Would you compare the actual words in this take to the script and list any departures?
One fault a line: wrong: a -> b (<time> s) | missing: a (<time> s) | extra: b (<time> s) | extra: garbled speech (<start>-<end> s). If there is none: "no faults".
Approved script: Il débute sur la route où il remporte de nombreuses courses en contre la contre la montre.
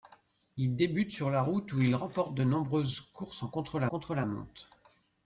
no faults